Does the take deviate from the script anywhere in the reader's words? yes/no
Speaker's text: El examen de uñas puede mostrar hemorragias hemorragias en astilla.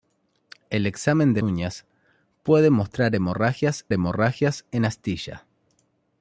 no